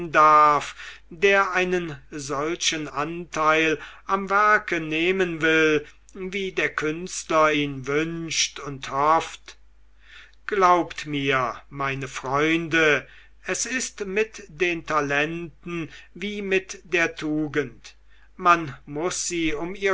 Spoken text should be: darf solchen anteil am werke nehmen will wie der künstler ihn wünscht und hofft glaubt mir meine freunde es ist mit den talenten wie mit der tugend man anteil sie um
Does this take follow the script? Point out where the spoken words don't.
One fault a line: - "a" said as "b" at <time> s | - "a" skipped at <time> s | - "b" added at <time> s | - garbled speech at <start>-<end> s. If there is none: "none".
- "der einen" added at 1.1 s
- "anteil" said as "muß" at 18.9 s